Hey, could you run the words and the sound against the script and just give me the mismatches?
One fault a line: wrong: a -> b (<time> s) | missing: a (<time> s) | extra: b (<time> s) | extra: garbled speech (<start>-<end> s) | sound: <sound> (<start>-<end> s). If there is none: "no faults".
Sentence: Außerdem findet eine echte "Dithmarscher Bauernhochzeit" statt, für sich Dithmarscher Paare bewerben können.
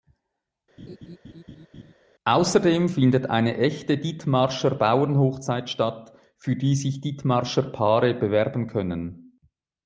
sound: laugh (0.8-1.9 s)
extra: die (6.6 s)